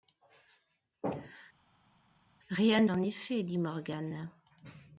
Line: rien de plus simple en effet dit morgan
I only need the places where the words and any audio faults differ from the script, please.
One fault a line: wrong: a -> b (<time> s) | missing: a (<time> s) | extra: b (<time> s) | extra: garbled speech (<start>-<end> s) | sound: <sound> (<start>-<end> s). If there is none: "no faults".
missing: de plus simple (2.8 s)